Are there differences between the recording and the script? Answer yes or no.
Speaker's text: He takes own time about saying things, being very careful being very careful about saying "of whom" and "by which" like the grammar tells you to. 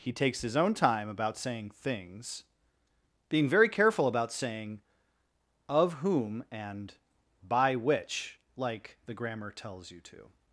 yes